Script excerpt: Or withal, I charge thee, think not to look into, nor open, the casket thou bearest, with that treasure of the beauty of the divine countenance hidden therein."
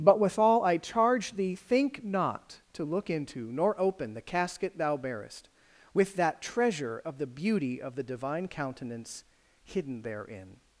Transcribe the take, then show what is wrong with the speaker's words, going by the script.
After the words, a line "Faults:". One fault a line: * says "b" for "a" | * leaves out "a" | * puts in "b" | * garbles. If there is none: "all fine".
But withal, I charge thee, think not to look into, nor open, the casket thou bearest, with that treasure of the beauty of the divine countenance hidden therein."
Faults:
* says "But" for "Or"